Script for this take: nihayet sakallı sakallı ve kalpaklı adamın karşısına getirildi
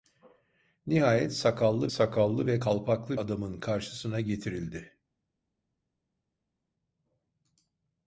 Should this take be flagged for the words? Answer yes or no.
no